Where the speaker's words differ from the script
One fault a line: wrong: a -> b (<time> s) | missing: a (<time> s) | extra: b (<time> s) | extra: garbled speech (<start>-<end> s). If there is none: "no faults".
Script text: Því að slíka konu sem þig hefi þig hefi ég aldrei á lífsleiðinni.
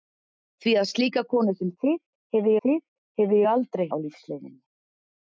no faults